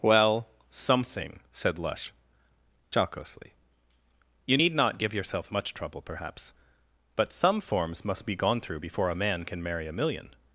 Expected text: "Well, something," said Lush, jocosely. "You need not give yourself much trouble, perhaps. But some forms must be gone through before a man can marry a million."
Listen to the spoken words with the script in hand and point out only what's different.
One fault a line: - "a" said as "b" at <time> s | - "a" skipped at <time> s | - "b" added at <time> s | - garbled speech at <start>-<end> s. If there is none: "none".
none